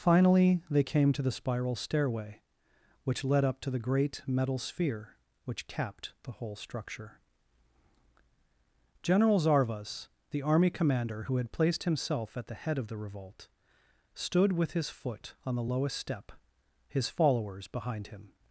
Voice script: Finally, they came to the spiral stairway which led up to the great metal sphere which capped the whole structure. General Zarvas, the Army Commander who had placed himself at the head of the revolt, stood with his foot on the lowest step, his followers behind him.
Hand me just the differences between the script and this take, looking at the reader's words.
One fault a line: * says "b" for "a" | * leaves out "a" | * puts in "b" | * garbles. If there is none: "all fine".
all fine